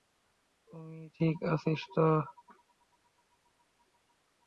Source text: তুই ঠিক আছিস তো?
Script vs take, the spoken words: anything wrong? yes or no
no